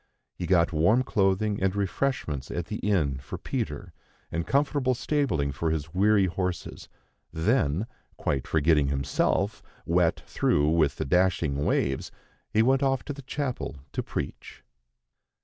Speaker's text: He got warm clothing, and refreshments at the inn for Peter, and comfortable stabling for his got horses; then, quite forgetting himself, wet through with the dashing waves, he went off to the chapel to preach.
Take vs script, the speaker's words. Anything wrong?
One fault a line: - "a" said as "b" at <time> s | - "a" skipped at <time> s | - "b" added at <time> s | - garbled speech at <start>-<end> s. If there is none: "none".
- "got" said as "weary" at 5.9 s